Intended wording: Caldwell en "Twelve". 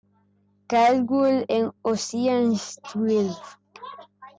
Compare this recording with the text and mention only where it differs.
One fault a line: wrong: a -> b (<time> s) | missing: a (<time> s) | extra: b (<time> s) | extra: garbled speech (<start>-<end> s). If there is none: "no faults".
extra: Ocean's (1.8 s)